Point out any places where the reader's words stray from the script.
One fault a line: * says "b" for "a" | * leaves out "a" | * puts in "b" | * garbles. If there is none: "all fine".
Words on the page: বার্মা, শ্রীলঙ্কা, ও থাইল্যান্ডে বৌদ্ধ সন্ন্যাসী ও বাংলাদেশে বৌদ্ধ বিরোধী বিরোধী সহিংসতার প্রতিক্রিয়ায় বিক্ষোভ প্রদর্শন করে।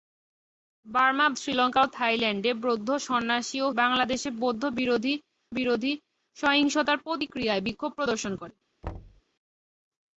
all fine